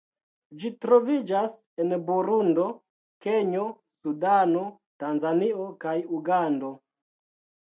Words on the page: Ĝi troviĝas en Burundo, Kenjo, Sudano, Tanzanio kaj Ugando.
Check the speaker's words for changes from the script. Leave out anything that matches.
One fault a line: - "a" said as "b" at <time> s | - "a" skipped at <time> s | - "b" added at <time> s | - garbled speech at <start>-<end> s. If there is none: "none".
none